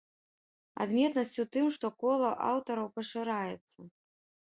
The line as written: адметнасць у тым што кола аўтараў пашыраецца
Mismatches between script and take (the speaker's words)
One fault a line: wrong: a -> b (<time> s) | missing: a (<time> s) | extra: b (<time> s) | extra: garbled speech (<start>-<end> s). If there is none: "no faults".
no faults